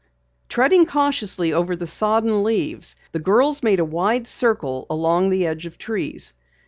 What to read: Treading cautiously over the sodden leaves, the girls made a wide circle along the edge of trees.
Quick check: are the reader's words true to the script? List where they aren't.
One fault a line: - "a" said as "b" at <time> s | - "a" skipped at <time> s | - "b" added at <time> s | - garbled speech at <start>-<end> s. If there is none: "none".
none